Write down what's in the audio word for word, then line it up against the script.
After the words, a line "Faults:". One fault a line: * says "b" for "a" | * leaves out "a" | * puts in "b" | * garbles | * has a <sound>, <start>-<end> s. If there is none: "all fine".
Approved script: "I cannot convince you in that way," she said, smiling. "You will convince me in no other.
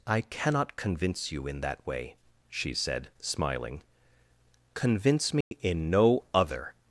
"I cannot convince you in that way," she said, smiling. "convince me in no other.
Faults:
* leaves out "You will"
* has a dropout, 5.4-5.5 s